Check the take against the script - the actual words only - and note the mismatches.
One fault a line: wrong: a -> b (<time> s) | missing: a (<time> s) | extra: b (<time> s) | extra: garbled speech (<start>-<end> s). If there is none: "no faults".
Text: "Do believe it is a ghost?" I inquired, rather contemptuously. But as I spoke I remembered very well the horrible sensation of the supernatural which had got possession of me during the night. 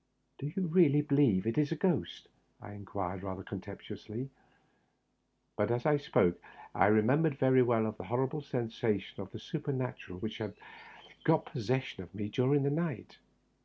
extra: you really (0.5 s)